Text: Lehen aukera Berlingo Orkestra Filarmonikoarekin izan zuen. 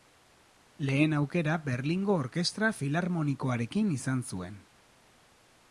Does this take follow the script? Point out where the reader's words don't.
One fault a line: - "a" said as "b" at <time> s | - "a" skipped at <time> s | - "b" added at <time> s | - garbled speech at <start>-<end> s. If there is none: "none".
none